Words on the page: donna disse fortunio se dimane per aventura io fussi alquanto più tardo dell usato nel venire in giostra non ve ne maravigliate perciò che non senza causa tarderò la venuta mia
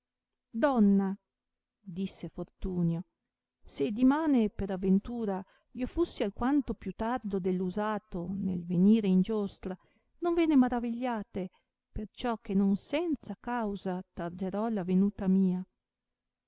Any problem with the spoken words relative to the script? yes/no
no